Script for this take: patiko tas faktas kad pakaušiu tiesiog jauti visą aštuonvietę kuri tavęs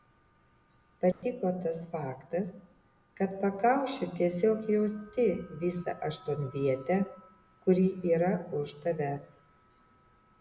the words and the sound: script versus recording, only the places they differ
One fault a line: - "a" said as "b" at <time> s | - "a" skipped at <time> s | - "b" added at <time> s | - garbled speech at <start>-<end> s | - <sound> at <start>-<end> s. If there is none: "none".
- dropout at 1.1-1.2 s
- "yra už" added at 8.2 s